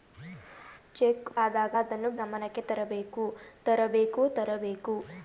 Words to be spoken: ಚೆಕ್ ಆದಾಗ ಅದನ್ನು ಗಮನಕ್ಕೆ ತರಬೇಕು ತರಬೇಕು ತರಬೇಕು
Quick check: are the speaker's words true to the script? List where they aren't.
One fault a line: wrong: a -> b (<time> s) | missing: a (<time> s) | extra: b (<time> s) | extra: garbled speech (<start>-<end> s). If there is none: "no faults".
no faults